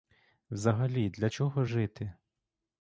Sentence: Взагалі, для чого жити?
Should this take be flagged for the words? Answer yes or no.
no